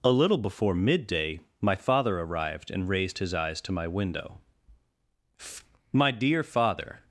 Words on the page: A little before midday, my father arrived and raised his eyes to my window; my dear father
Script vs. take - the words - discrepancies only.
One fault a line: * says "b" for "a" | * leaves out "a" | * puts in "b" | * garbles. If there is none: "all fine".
all fine